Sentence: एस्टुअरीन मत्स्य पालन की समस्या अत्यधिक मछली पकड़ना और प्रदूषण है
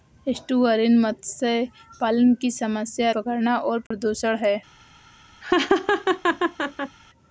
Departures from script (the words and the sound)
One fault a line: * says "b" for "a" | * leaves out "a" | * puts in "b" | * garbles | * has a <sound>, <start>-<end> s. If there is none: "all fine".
* leaves out "अत्यधिक मछली"
* has a dropout, 3.9-3.9 s
* has a laugh, 5.4-7.0 s